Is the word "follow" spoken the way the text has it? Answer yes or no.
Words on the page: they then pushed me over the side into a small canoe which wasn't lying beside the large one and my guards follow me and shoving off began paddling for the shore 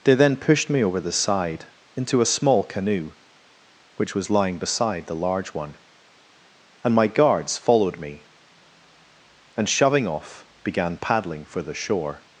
no